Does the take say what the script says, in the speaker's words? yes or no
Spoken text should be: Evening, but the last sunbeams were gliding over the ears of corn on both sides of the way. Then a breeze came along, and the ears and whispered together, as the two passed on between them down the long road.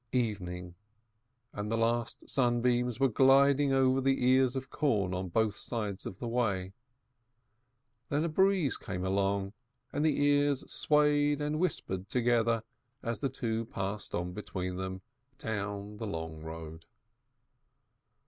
no